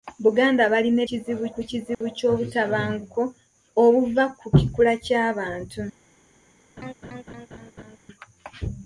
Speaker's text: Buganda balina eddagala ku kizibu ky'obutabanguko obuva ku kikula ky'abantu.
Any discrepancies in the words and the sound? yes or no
yes